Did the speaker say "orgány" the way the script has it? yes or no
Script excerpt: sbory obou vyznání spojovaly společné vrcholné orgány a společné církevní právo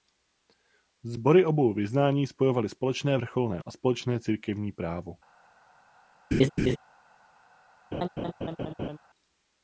no